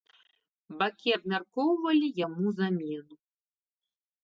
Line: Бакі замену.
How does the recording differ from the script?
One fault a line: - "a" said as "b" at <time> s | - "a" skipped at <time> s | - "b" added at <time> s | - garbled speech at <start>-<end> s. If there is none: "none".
- "абмяркоўвалі яму" added at 1.1 s